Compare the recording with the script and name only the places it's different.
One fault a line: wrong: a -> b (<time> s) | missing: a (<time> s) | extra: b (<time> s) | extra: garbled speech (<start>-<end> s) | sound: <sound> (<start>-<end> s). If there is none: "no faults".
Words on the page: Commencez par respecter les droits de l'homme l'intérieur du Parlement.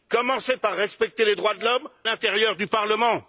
no faults